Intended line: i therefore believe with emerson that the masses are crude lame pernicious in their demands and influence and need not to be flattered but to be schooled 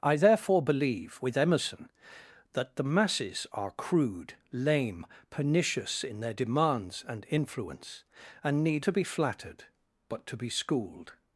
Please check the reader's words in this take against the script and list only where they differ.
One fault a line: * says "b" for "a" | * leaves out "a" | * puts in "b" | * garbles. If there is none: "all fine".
* leaves out "not"